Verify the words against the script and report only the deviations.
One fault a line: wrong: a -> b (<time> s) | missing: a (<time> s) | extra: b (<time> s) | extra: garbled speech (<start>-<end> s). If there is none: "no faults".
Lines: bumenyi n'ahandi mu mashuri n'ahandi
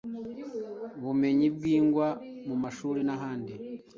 wrong: n'ahandi -> bwigwa (1.6 s)